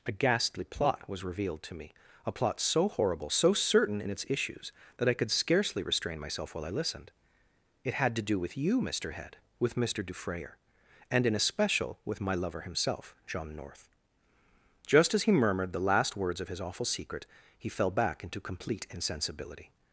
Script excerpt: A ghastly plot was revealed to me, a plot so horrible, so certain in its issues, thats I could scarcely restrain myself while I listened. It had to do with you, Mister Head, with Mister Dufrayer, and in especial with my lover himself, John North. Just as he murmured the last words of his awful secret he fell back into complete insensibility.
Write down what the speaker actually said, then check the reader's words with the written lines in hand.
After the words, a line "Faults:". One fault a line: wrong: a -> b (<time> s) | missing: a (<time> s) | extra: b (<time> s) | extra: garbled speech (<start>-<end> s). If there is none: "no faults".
A ghastly plot was revealed to me, a plot so horrible, so certain in its issues, that I could scarcely restrain myself while I listened. It had to do with you, Mister Head, with Mister Dufrayer, and in especial with my lover himself, John North. Just as he murmured the last words of his awful secret he fell back into complete insensibility.
Faults:
wrong: thats -> that (5.0 s)